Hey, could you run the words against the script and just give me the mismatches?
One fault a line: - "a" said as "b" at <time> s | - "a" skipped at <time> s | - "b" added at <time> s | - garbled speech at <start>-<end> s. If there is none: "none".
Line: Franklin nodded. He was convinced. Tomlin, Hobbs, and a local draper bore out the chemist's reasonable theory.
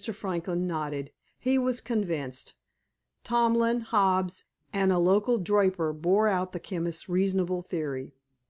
none